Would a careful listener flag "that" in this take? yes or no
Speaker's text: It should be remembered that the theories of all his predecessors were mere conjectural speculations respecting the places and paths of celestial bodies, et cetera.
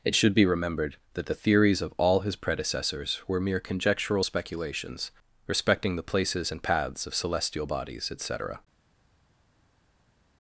no